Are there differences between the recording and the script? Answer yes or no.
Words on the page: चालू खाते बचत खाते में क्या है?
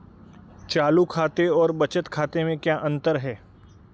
yes